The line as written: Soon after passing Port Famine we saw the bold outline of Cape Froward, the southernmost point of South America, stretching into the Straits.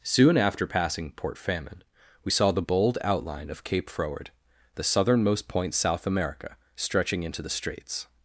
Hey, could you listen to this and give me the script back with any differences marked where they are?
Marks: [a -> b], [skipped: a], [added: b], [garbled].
Soon after passing Port Famine we saw the bold outline of Cape Froward, the southernmost point [skipped: of] South America, stretching into the Straits.